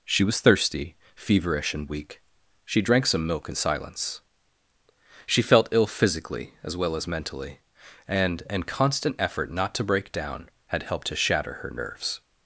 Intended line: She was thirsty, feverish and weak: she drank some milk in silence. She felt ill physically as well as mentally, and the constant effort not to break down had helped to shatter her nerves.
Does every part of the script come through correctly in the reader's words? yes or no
no